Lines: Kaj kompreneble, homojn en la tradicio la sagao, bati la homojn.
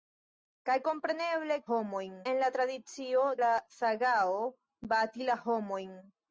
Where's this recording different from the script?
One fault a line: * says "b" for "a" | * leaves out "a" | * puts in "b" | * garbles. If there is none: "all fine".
all fine